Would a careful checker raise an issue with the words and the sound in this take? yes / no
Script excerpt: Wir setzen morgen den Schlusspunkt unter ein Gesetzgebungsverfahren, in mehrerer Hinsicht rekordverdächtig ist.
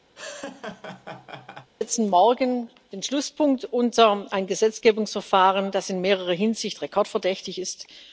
yes